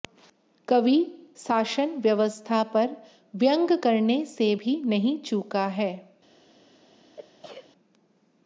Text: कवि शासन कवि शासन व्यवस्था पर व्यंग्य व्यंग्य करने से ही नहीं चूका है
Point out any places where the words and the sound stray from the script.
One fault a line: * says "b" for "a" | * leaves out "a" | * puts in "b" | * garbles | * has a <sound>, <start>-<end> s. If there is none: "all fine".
* leaves out "कवि शासन"
* leaves out "व्यंग्य"
* says "भी" for "ही"
* has a sneeze, 7.2-7.7 s